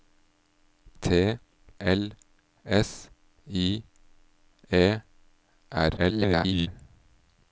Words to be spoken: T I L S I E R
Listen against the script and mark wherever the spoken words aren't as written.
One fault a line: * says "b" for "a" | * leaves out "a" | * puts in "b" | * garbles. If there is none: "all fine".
* leaves out "I"
* garbles